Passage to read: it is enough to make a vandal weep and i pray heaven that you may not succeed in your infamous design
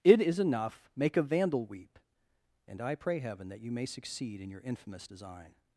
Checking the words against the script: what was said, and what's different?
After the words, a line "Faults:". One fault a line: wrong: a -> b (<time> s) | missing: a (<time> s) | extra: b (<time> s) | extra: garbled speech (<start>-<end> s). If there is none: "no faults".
it is enough make a vandal weep and i pray heaven that you may succeed in your infamous design
Faults:
missing: to (0.9 s)
missing: not (3.9 s)